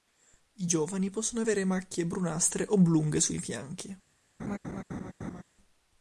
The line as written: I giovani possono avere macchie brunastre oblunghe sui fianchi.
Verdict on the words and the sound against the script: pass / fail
fail